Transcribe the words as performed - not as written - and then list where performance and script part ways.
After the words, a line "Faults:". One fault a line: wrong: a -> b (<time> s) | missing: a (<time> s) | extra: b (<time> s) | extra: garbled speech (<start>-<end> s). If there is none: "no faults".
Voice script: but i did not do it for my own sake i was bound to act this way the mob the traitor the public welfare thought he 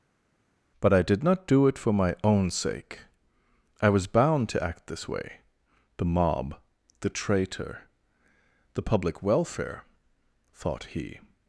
but i did not do it for my own sake i was bound to act this way the mob the traitor the public welfare thought he
Faults:
no faults